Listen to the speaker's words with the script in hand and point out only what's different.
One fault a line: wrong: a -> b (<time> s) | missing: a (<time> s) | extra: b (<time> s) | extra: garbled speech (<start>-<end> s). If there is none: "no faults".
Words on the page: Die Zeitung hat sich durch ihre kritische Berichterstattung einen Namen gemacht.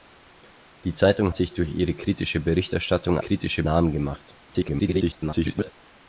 missing: hat (1.4 s)
wrong: einen -> kritische (3.2 s)
extra: garbled speech (4.4-5.7 s)